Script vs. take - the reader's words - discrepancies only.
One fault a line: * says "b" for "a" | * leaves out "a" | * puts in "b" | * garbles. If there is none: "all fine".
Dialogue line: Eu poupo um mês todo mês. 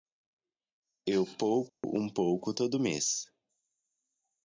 * says "pouco" for "mês"